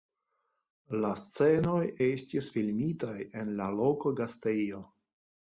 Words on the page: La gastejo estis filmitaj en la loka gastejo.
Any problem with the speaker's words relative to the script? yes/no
yes